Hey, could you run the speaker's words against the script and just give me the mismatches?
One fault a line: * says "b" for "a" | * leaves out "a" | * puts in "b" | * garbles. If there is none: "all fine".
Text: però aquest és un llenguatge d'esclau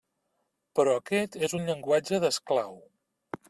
all fine